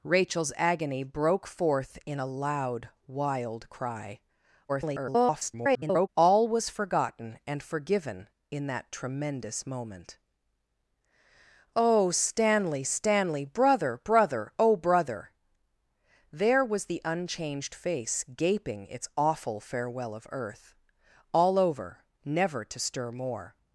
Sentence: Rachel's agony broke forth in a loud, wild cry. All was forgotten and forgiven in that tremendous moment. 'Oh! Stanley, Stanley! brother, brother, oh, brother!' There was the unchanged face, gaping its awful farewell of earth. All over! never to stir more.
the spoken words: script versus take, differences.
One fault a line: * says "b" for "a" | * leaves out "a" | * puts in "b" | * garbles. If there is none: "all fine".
* garbles